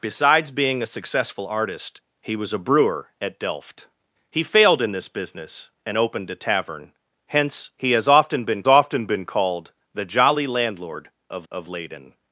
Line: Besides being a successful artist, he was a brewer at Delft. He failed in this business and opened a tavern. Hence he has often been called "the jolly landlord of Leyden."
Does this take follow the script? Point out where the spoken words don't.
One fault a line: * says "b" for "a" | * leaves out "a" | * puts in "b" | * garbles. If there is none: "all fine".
* puts in "often been"
* puts in "of"